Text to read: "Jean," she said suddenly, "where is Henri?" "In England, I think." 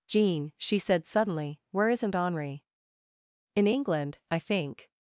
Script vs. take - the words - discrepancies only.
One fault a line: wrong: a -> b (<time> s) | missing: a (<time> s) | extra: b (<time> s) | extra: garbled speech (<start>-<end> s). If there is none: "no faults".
wrong: is -> isn't (1.9 s)